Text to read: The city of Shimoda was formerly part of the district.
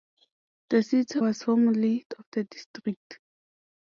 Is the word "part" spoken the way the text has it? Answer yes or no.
no